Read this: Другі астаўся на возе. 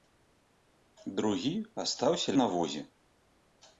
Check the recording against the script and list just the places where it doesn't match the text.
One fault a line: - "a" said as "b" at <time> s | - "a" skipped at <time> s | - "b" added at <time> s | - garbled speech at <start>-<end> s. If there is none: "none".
none